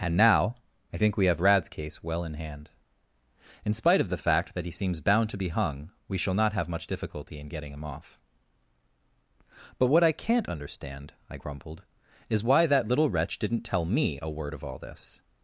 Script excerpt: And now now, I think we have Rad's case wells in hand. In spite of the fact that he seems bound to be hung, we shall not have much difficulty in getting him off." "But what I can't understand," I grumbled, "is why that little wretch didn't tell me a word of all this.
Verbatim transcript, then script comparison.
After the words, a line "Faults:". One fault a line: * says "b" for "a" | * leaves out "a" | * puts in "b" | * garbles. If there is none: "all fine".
And now, I think we have Rad's case well in hand. In spite of the fact that he seems bound to be hung, we shall not have much difficulty in getting him off." "But what I can't understand," I grumbled, "is why that little wretch didn't tell me a word of all this.
Faults:
* leaves out "now"
* says "well" for "wells"